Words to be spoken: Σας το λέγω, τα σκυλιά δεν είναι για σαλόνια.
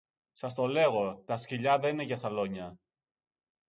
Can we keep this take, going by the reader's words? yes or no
yes